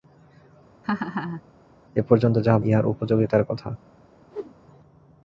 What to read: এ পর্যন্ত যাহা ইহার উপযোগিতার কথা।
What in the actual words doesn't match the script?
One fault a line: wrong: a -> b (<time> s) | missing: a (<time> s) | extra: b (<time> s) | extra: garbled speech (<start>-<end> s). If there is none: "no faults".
no faults